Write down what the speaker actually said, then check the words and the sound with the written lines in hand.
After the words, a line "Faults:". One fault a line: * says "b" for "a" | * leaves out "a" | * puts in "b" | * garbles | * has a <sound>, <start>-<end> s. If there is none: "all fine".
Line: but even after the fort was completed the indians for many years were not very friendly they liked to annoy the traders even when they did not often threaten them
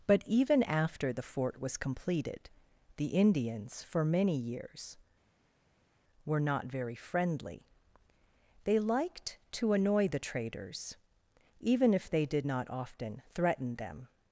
but even after the fort was completed the indians for many years were not very friendly they liked to annoy the traders even if they did not often threaten them
Faults:
* says "if" for "when"